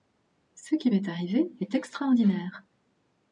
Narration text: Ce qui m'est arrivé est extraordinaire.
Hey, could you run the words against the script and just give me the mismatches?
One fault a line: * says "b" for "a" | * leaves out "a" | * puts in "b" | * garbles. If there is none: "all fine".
all fine